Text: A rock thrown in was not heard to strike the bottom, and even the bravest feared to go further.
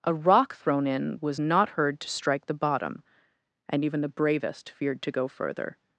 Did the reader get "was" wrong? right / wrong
right